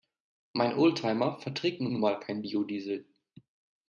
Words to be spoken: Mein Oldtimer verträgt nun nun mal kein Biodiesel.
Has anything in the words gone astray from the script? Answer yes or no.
no